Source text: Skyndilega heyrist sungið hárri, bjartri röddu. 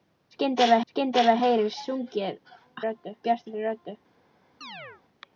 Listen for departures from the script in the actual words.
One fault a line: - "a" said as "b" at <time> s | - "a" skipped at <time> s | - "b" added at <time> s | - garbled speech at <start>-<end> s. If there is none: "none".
- "skyndilega" added at 0.9 s
- "hárri" said as "röddu" at 2.9 s